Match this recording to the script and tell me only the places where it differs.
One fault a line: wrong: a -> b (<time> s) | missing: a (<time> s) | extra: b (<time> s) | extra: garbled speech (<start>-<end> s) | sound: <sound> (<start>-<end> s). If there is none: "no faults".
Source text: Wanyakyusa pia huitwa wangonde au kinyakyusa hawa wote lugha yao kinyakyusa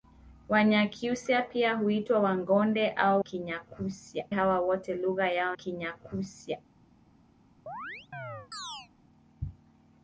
sound: chirp (7.7-8.9 s)